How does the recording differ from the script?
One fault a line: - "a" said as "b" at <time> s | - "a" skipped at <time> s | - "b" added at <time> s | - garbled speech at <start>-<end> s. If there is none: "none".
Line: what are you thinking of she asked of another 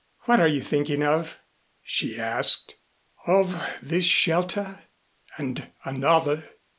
- "this shelter and" added at 3.8 s